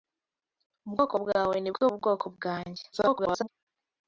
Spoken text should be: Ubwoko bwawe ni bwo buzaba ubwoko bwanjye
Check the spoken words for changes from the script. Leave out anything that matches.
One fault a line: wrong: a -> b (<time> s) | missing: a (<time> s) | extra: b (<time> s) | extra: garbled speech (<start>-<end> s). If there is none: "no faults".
missing: buzaba (1.9 s)
extra: garbled speech (2.9-3.5 s)